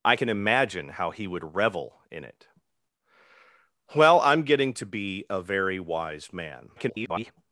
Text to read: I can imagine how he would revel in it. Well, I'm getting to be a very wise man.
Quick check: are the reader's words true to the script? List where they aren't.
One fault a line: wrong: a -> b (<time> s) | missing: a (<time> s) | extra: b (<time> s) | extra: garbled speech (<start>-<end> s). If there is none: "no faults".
extra: garbled speech (6.8-7.3 s)